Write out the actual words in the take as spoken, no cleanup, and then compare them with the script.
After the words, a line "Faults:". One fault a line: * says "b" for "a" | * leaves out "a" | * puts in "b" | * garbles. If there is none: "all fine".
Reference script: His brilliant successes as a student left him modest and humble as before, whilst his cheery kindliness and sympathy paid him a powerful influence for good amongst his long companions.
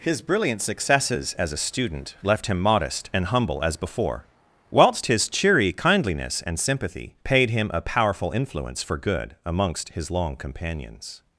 His brilliant successes as a student left him modest and humble as before, whilst his cheery kindliness and sympathy paid him a powerful influence for good amongst his long companions.
Faults:
all fine